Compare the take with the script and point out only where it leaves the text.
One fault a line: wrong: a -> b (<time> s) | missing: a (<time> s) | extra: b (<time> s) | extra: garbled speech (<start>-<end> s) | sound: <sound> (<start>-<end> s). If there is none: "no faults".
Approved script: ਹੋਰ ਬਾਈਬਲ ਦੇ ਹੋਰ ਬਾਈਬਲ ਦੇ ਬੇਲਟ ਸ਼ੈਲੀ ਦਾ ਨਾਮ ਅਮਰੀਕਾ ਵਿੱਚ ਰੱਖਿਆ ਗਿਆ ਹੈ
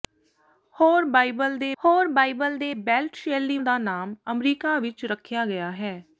no faults